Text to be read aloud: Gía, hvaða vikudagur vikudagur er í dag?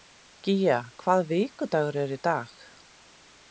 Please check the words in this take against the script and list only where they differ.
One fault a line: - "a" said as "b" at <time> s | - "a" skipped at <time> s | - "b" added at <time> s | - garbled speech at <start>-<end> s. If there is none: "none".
- "vikudagur" skipped at 2.0 s